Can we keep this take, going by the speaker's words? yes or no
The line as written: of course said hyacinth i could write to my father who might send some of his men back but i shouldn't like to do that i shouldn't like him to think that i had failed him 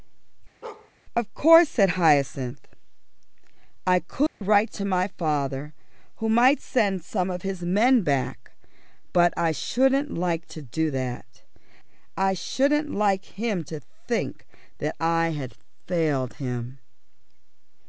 yes